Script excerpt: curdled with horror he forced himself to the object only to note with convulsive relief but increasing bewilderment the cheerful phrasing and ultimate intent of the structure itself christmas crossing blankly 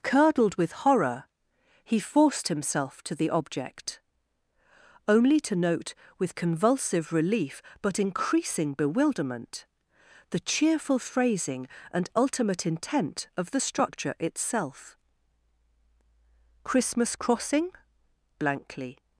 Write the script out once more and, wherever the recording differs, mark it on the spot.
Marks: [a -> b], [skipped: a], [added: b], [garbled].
curdled with horror he forced himself to the object only to note with convulsive relief but increasing bewilderment the cheerful phrasing and ultimate intent of the structure itself christmas crossing blankly